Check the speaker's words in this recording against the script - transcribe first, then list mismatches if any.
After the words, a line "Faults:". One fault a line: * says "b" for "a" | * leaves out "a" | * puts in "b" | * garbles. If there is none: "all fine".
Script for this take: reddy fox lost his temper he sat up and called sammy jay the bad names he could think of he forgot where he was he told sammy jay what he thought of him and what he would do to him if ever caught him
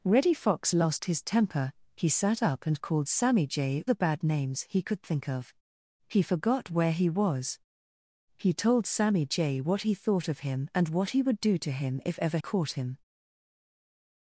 reddy fox lost his temper he sat up and called sammy jay the bad names he could think of he forgot where he was he told sammy jay what he thought of him and what he would do to him if ever caught him
Faults:
all fine